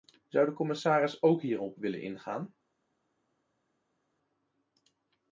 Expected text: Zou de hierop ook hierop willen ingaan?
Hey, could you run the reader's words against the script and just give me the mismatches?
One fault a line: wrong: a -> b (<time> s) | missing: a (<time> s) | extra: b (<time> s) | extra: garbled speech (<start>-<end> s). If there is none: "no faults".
wrong: hierop -> commissaris (0.5 s)